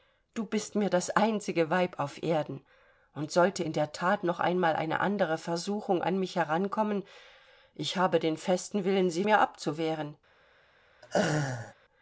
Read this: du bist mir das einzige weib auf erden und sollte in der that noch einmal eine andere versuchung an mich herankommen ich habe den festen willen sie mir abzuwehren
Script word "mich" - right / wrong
right